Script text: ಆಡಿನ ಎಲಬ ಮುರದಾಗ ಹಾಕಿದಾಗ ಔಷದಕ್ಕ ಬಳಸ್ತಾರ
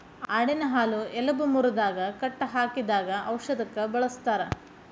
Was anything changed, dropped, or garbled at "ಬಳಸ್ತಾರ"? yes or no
no